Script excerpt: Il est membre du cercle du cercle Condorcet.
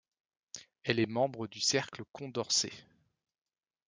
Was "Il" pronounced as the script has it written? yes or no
no